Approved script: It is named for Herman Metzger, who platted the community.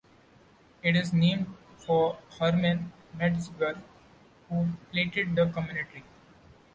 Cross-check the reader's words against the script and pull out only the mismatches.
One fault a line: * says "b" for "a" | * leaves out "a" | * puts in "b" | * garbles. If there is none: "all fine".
all fine